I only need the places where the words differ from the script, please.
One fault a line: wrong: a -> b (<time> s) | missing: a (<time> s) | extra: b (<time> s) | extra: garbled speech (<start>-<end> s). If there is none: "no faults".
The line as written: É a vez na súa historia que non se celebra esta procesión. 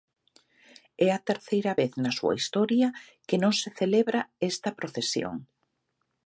extra: terceira (1.3 s)